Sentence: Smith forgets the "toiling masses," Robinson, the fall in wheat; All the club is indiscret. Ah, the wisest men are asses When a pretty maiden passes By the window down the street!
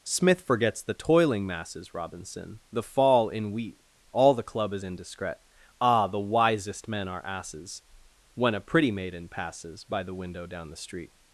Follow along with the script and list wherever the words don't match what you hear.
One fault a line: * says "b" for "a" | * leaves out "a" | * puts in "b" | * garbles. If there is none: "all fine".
all fine